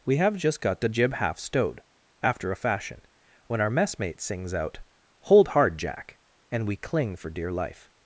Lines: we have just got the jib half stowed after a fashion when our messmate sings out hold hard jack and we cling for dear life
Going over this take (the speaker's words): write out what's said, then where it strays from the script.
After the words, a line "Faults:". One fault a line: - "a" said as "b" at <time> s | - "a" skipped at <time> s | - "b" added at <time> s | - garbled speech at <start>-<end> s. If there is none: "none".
we have just got the jib half stowed after a fashion when our messmate sings out hold hard jack and we cling for dear life
Faults:
none